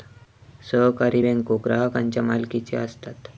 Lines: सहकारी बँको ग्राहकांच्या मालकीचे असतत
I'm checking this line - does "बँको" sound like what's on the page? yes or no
yes